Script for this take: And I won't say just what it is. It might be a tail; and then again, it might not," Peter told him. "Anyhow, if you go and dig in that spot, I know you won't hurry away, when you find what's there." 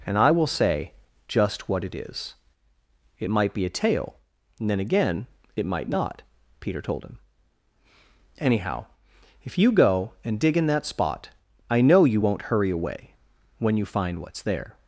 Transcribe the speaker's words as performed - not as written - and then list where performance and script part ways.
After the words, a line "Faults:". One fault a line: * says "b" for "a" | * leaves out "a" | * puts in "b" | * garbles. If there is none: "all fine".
And I will say just what it is. It might be a tail; and then again, it might not," Peter told him. "Anyhow, if you go and dig in that spot, I know you won't hurry away, when you find what's there."
Faults:
* says "will" for "won't"